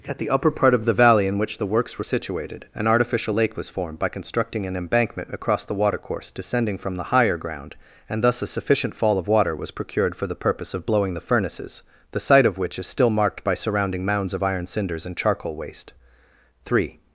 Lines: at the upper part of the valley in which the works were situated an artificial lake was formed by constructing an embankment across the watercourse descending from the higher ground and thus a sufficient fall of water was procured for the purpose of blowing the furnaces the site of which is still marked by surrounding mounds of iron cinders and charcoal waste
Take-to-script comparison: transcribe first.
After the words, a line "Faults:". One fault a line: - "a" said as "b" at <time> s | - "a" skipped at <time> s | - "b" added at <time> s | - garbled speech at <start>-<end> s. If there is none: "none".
at the upper part of the valley in which the works were situated an artificial lake was formed by constructing an embankment across the watercourse descending from the higher ground and thus a sufficient fall of water was procured for the purpose of blowing the furnaces the site of which is still marked by surrounding mounds of iron cinders and charcoal waste three
Faults:
- "three" added at 16.7 s